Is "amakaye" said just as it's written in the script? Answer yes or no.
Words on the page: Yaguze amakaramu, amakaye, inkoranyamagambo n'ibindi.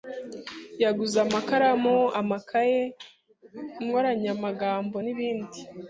yes